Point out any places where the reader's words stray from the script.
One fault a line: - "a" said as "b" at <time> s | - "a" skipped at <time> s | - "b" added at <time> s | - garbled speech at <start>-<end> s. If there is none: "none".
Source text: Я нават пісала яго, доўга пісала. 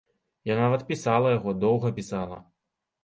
none